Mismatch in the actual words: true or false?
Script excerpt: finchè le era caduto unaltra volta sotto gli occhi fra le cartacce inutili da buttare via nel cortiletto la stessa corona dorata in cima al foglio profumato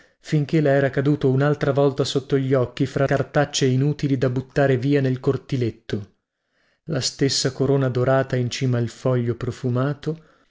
true